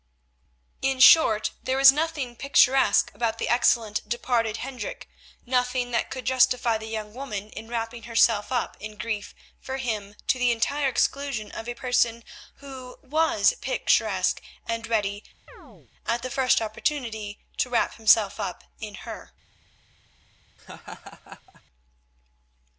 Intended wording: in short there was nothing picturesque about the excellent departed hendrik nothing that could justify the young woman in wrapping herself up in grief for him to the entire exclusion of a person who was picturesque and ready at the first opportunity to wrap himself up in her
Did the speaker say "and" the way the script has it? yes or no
yes